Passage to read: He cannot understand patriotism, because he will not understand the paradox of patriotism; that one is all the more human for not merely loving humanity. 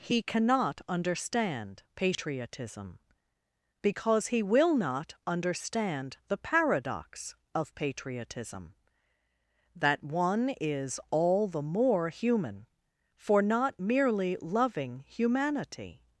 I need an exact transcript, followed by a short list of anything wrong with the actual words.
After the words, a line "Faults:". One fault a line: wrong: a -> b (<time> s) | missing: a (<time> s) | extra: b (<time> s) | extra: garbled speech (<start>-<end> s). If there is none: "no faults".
He cannot understand patriotism, because he will not understand the paradox of patriotism; that one is all the more human for not merely loving humanity.
Faults:
no faults